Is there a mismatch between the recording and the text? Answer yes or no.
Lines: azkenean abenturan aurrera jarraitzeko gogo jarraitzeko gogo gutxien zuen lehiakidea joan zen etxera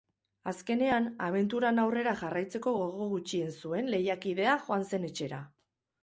yes